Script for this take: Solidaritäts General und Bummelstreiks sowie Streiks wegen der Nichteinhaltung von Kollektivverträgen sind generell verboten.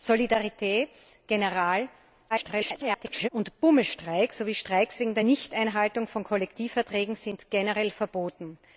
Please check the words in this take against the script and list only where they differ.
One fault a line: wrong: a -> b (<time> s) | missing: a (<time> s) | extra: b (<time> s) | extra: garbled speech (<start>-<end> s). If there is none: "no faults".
extra: garbled speech (2.3-3.3 s)